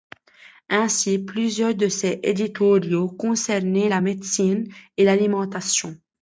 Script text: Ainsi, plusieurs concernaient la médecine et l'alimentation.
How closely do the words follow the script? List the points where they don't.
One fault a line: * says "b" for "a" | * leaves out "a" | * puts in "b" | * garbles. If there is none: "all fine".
* puts in "de ses éditoriaux"